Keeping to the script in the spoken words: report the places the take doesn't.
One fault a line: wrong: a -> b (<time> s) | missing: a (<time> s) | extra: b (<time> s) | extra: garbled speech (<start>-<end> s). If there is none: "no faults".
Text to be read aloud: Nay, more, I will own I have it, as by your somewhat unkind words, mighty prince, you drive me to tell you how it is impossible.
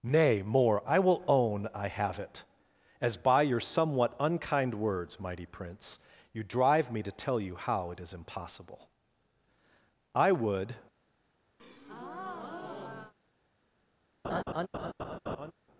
extra: I would (10.2 s)